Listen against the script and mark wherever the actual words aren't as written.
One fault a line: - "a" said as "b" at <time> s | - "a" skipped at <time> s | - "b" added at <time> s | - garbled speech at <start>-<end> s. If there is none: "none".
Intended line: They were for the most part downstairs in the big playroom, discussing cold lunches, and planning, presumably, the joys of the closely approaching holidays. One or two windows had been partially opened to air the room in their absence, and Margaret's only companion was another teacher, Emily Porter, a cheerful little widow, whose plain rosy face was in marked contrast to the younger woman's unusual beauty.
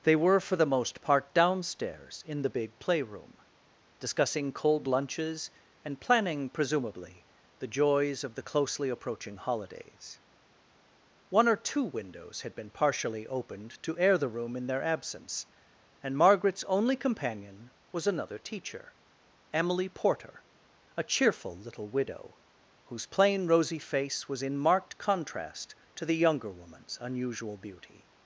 none